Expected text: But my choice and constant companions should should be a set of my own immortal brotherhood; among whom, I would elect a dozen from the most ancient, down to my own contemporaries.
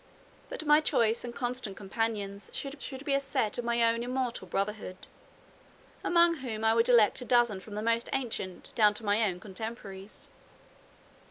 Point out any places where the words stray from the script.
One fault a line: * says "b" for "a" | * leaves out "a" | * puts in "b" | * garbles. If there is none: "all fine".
all fine